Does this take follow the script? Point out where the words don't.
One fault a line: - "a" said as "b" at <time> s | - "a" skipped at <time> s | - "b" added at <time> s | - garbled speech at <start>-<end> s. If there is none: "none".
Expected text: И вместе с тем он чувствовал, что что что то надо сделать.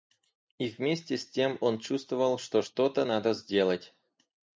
- "что" skipped at 2.9 s